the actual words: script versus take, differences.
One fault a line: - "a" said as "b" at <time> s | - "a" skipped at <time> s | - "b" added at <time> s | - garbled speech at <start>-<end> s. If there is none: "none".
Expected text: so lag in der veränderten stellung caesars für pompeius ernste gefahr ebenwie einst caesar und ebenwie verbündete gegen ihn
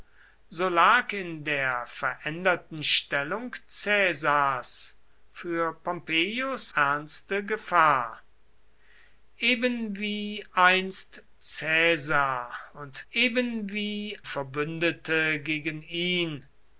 none